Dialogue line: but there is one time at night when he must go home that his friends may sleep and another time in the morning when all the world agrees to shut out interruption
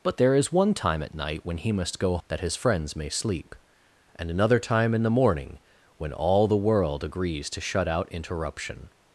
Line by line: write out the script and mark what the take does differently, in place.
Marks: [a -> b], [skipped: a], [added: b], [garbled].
but there is one time at night when he must go [skipped: home] that his friends may sleep and another time in the morning when all the world agrees to shut out interruption